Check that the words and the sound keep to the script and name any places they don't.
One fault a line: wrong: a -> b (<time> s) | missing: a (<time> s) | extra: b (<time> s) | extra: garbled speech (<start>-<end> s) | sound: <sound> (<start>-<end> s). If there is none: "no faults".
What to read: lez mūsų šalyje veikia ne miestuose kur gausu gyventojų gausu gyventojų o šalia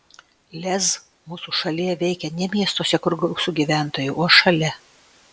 missing: gausu gyventojų (4.2 s)